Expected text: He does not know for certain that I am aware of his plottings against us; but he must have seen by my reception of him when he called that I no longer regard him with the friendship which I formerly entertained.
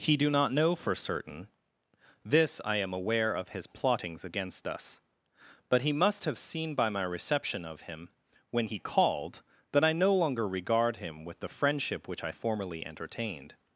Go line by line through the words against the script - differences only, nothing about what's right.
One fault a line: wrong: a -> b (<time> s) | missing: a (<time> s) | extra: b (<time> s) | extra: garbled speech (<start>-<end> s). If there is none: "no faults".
wrong: does -> do (0.2 s)
wrong: that -> this (2.2 s)